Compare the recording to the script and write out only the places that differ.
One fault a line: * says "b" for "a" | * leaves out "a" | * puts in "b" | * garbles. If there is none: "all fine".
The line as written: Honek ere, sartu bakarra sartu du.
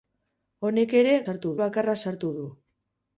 all fine